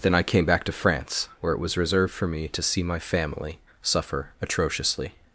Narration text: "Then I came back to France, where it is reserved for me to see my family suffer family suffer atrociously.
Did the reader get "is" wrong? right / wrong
wrong